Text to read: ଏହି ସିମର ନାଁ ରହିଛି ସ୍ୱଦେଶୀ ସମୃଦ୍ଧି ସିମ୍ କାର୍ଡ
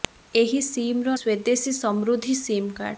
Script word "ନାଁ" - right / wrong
wrong